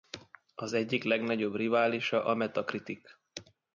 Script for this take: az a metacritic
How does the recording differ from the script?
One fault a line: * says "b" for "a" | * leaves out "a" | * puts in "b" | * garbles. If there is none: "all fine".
* puts in "egyik legnagyobb riválisa"